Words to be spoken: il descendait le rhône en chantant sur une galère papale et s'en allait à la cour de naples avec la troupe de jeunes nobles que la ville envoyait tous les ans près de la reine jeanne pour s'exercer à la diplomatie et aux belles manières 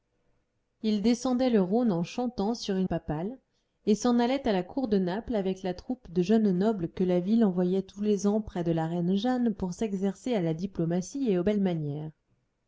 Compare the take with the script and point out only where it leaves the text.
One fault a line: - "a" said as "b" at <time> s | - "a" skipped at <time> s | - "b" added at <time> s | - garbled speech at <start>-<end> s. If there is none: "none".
- "galère" skipped at 2.9 s